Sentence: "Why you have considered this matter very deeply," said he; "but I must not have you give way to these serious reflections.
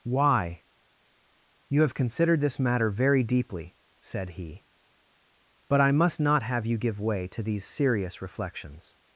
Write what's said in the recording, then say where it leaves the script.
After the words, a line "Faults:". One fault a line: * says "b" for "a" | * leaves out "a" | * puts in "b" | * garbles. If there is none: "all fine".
"Why you have considered this matter very deeply," said he; "but I must not have you give way to these serious reflections.
Faults:
all fine